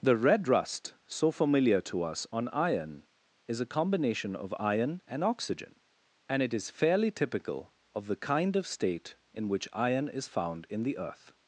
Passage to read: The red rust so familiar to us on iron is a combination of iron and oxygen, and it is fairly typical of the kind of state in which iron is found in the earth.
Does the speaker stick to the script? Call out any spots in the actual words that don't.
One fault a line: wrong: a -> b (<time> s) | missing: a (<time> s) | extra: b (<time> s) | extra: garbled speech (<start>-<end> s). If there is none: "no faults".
no faults